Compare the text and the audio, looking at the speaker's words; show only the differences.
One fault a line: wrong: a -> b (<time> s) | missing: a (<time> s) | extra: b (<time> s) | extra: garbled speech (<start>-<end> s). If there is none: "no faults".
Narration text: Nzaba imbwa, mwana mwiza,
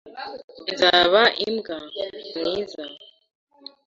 missing: mwana (1.8 s)